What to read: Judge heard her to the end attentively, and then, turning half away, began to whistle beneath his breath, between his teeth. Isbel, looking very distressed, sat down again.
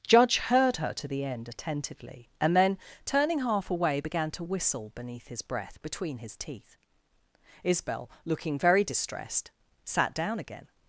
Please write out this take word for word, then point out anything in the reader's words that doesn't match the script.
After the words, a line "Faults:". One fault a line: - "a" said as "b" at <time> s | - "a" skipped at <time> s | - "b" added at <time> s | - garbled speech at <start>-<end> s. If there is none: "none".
Judge heard her to the end attentively, and then, turning half away, began to whistle beneath his breath, between his teeth. Isbel, looking very distressed, sat down again.
Faults:
none